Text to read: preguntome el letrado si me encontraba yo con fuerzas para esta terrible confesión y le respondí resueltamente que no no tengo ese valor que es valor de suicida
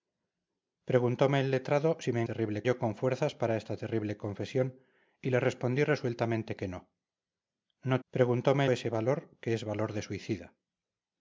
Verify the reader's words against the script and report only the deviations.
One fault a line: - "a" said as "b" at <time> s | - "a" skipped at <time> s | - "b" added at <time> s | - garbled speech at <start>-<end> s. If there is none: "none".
- "encontraba" said as "terrible" at 2.2 s
- "tengo" said as "preguntome" at 8.1 s